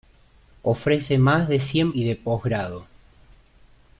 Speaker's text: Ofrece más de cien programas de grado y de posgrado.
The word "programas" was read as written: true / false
false